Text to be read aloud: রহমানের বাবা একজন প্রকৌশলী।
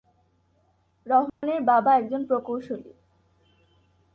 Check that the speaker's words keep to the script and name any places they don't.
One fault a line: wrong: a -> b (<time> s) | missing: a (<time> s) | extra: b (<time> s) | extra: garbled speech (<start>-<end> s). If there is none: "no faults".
no faults